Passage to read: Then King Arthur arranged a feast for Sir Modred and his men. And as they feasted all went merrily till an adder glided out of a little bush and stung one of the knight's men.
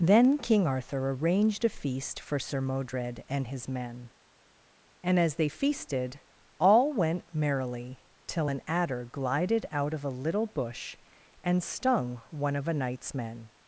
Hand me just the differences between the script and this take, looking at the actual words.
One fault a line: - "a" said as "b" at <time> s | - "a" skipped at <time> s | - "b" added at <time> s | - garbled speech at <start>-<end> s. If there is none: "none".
- "the" said as "a" at 12.7 s